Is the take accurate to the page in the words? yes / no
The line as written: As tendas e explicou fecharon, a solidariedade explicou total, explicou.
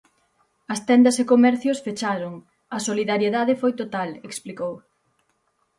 no